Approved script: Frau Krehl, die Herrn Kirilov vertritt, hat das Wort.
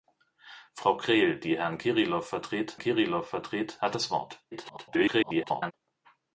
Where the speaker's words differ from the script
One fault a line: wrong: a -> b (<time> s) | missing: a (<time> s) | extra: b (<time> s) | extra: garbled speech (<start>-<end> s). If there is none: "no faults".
extra: Kirilov vertritt (2.8 s)
extra: garbled speech (4.5-5.7 s)